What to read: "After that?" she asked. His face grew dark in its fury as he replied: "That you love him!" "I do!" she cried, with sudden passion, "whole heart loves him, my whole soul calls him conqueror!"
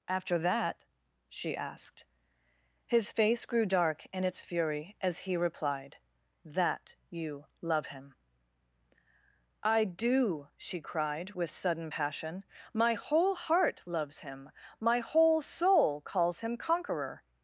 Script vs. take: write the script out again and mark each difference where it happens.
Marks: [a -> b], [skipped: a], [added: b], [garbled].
"After that?" she asked. His face grew dark in its fury as he replied: "That you love him!" "I do!" she cried, with sudden passion, [added: my] "whole heart loves him, my whole soul calls him conqueror!"